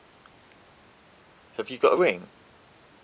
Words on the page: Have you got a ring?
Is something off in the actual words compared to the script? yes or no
no